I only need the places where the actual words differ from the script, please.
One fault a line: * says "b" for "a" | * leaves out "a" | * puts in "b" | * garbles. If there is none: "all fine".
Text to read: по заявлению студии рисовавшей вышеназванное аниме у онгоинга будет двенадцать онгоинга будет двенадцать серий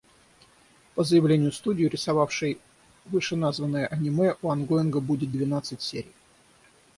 * leaves out "онгоинга будет двенадцать"